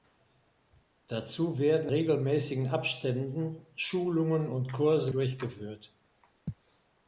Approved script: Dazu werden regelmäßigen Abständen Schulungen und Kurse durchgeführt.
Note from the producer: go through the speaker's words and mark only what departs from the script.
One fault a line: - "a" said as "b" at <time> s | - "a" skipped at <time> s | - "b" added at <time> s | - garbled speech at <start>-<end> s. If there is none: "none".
none